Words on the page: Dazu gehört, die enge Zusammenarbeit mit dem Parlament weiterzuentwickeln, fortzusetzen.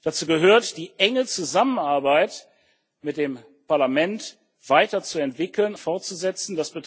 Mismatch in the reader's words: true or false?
false